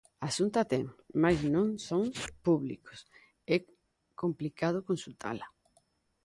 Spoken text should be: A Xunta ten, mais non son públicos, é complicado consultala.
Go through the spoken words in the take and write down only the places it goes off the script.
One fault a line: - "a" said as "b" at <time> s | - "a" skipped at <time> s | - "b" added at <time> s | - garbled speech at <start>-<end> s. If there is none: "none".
none